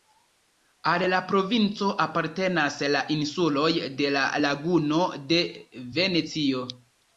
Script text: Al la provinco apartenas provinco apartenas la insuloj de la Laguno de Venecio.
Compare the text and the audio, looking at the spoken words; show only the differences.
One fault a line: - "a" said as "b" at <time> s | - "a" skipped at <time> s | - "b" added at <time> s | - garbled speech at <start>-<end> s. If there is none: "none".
- "provinco apartenas" skipped at 2.8 s